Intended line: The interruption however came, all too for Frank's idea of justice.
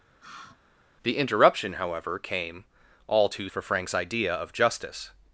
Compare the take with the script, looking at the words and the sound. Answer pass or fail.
fail